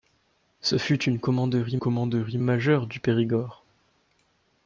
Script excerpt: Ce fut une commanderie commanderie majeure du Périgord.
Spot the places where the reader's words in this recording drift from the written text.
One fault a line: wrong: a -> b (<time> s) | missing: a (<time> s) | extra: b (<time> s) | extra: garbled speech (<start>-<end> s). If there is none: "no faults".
no faults